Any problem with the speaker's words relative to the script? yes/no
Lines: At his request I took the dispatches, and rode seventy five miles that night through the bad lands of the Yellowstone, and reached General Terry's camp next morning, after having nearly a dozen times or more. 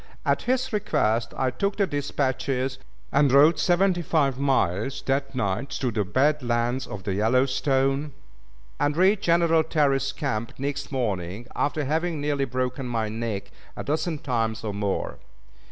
yes